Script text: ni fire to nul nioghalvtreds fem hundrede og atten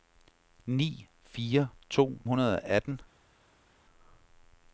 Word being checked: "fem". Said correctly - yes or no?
no